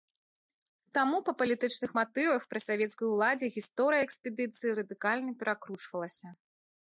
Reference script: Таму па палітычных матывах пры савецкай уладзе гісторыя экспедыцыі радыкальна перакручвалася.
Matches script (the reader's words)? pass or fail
pass